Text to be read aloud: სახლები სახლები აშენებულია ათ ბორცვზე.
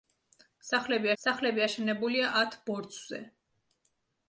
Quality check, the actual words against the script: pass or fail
pass